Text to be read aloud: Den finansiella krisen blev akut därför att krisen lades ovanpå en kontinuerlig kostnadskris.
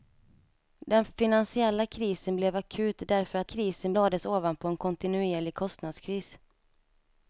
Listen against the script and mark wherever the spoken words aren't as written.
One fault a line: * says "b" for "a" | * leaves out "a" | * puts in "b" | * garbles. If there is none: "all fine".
all fine